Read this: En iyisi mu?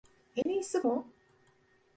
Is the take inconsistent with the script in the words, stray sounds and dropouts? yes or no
yes